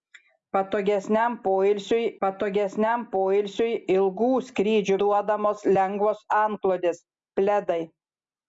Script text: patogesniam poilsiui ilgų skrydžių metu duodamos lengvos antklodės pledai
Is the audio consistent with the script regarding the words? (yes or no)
no